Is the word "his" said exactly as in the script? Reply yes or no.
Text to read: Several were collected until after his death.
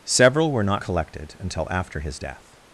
yes